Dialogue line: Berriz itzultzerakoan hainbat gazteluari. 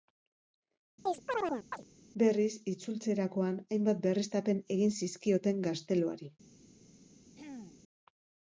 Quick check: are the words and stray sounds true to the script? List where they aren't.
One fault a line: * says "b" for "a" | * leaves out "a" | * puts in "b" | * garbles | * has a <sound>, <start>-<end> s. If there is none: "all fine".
* has a chirp, 1.1-1.8 s
* puts in "berriztapen egin zizkioten"
* has a throat clearing, 7.3-7.8 s